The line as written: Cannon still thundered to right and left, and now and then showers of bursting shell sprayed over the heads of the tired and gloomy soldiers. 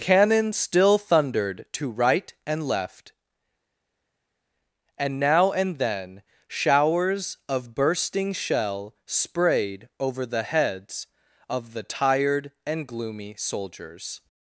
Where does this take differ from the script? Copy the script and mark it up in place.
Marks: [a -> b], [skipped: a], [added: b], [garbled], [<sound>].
Cannon still thundered to right and left, and now and then showers of bursting shell sprayed over the heads of the tired and gloomy soldiers.